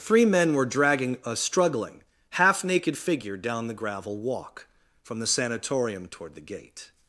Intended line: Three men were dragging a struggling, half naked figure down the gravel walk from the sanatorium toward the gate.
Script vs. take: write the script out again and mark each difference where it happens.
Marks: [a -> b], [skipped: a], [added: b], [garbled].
Three men were dragging a struggling, half naked figure down the gravel walk from the sanatorium toward the gate.